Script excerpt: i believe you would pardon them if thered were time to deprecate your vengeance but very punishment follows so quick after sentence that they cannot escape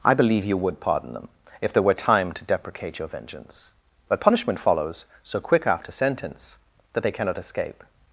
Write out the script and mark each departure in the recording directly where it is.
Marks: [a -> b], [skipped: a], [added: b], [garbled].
i believe you would pardon them if [thered -> there] were time to deprecate your vengeance but [skipped: very] punishment follows so quick after sentence that they cannot escape